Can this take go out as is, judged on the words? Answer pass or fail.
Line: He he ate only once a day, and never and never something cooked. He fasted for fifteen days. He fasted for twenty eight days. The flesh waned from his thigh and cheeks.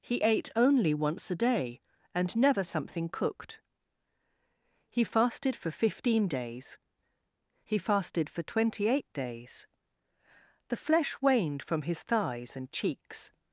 fail